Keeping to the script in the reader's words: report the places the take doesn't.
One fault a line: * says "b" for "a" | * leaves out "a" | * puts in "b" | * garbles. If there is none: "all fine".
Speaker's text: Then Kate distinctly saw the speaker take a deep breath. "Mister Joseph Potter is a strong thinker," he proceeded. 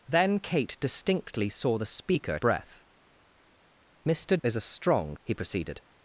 * leaves out "take a deep"
* leaves out "Joseph Potter"
* leaves out "thinker"